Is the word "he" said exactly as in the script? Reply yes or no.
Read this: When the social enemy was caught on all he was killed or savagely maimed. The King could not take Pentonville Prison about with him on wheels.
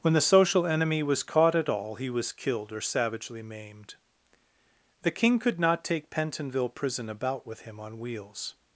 yes